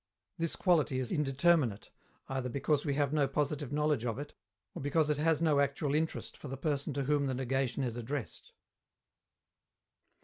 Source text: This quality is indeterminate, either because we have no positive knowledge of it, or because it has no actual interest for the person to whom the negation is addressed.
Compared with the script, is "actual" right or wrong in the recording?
right